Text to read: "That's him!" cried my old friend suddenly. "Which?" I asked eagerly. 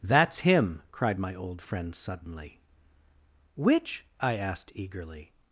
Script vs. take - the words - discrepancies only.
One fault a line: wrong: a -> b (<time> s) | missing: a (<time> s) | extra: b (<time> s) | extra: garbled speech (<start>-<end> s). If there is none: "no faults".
no faults